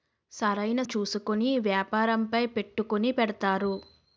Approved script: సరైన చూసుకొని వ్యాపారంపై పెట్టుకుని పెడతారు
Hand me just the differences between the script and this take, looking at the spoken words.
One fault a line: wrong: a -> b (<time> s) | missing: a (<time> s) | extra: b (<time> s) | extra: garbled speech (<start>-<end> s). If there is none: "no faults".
no faults